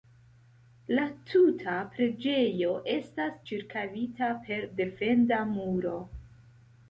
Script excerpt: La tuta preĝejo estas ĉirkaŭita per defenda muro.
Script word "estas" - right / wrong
right